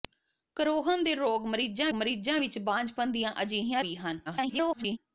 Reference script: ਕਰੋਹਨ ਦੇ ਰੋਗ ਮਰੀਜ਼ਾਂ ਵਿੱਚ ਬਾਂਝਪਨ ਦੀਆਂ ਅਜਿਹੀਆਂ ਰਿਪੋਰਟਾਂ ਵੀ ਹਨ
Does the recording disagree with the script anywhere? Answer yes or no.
yes